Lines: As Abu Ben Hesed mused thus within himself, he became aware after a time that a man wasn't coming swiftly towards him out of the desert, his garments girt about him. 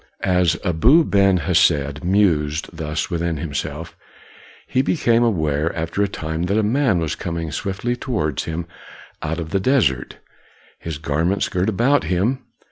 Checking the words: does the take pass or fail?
fail